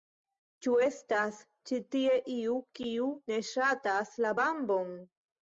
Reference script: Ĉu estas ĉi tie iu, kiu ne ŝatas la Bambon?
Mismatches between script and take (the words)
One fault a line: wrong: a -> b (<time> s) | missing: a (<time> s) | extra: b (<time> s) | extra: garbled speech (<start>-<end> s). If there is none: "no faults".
no faults